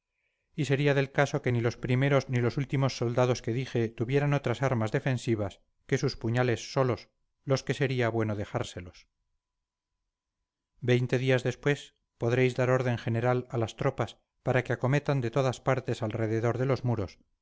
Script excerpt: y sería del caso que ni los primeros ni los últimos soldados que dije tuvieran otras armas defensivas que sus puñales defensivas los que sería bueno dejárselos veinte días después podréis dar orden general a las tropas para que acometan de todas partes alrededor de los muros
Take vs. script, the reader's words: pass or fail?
fail